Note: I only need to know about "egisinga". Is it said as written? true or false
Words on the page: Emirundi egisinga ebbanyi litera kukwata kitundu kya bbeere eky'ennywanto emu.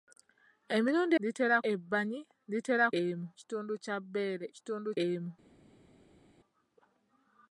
false